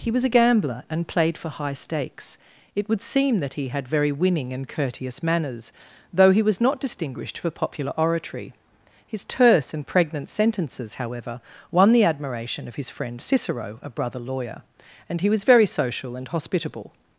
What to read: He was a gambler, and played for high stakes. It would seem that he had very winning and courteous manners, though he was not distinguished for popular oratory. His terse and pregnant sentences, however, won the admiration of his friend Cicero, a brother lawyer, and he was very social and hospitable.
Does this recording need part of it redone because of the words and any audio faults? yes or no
no